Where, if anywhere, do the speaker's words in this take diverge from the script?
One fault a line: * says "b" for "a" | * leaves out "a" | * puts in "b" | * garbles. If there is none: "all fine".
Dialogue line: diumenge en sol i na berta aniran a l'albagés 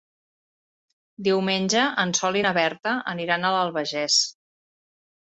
all fine